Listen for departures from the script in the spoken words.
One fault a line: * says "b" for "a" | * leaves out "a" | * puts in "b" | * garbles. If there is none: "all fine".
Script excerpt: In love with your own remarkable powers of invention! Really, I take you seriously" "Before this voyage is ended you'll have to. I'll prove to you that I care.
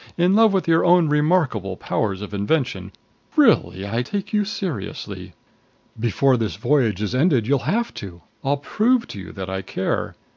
all fine